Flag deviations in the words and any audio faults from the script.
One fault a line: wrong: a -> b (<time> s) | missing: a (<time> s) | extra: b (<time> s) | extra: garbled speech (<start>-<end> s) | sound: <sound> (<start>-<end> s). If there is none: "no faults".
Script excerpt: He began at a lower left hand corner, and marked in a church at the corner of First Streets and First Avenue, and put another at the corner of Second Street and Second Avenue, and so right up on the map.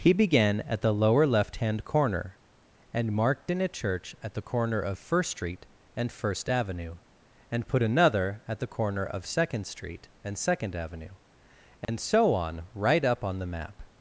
wrong: a -> the (0.8 s)
wrong: Streets -> Street (5.3 s)
sound: dropout (11.8-11.9 s)
extra: on (12.3 s)